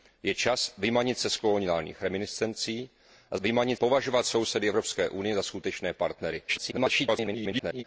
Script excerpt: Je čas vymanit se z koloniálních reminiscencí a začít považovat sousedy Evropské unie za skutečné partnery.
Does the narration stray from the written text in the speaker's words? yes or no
yes